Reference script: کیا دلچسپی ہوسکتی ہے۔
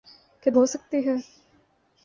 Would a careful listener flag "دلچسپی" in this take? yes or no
yes